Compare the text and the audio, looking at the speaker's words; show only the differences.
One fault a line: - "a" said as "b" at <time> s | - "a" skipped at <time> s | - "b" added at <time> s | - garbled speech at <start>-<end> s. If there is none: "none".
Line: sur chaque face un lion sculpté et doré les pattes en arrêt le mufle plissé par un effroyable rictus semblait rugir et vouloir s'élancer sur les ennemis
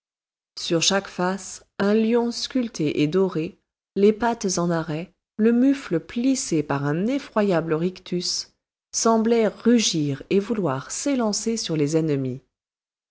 none